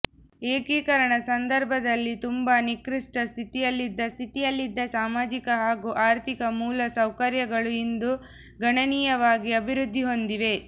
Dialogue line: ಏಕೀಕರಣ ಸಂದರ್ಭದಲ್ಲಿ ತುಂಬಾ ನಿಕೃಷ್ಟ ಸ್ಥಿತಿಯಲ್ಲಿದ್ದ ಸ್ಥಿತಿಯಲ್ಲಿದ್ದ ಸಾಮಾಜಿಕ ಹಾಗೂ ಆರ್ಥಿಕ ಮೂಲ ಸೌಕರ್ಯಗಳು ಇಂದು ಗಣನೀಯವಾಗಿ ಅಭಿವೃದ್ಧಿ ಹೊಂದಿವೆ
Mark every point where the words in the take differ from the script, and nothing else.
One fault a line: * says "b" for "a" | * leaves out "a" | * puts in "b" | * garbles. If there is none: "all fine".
all fine